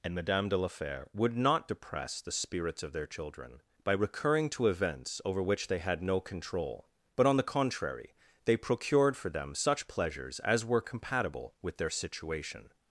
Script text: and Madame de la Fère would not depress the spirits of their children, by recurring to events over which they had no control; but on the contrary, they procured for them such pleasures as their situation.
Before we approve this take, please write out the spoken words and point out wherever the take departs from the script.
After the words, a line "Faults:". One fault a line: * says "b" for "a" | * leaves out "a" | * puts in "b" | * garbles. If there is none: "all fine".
and Madame de la Fère would not depress the spirits of their children, by recurring to events over which they had no control; but on the contrary, they procured for them such pleasures as were compatible with their situation.
Faults:
* puts in "were compatible with"